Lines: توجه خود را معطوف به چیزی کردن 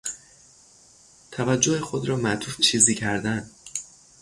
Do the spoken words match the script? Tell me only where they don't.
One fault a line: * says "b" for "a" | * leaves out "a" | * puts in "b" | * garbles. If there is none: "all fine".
* leaves out "به"